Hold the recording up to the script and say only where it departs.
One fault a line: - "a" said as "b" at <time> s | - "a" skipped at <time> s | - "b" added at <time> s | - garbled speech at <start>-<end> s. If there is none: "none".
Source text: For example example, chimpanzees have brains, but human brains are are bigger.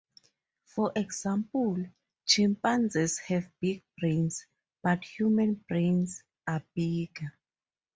- "example" skipped at 1.8 s
- "big" added at 3.6 s
- "are" skipped at 6.6 s